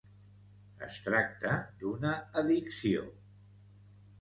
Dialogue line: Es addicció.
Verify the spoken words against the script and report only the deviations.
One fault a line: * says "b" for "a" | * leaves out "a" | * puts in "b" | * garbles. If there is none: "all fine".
* puts in "tracta d'una"